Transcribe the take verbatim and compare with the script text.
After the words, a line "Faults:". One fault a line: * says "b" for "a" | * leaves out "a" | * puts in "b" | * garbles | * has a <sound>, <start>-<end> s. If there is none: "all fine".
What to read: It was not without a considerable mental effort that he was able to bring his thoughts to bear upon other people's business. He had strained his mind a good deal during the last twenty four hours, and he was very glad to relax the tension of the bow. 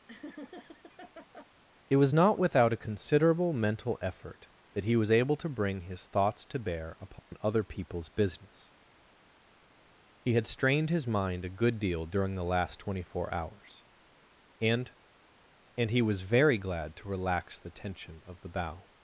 It was not without a considerable mental effort that he was able to bring his thoughts to bear upon other people's business. He had strained his mind a good deal during the last twenty four hours, and and he was very glad to relax the tension of the bow.
Faults:
* has a laugh, 0.1-1.5 s
* has a dropout, 7.2-7.3 s
* puts in "and"